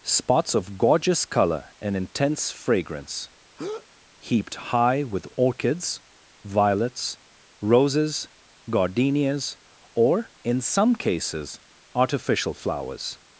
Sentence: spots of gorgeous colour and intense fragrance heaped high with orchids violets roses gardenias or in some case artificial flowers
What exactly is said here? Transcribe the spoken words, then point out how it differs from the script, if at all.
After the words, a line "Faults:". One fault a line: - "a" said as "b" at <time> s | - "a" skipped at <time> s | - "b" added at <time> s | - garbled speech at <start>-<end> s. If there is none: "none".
spots of gorgeous colour and intense fragrance heaped high with orchids violets roses gardenias or in some cases artificial flowers
Faults:
- "case" said as "cases" at 11.0 s